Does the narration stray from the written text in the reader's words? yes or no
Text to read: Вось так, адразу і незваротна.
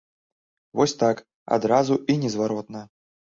no